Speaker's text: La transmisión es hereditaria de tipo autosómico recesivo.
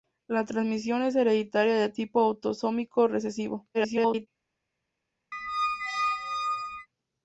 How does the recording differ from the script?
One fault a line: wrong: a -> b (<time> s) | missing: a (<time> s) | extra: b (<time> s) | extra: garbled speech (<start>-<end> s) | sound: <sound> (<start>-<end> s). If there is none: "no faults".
extra: garbled speech (3.7-4.3 s)
sound: squeak (5.3-6.9 s)